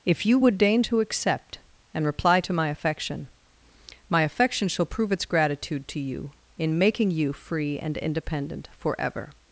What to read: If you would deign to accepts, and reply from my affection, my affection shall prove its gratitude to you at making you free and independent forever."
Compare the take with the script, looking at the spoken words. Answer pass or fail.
fail